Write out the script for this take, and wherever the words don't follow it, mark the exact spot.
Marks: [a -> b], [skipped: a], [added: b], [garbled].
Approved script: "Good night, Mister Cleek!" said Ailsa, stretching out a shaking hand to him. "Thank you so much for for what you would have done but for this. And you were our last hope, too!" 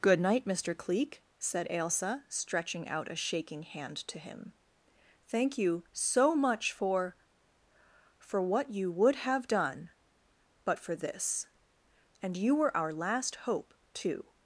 "Good night, Mister Cleek!" said Ailsa, stretching out a shaking hand to him. "Thank you so much for for what you would have done but for this. And you were our last hope, too!"